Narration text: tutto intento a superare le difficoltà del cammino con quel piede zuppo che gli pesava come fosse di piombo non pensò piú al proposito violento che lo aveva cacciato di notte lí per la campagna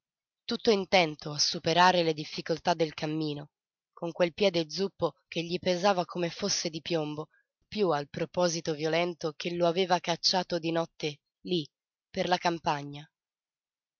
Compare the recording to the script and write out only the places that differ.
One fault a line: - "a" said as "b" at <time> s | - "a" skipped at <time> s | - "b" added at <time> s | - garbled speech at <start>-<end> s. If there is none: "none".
- "non pensò" skipped at 7.3 s